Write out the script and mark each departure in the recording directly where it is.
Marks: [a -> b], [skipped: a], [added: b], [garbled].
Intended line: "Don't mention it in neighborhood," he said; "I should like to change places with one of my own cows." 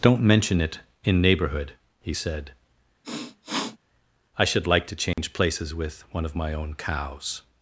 "Don't mention it in neighborhood," he said; "I should like to change places with one of my own cows."